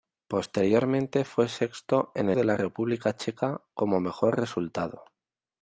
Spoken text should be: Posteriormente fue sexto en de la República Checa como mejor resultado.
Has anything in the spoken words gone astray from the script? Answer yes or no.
no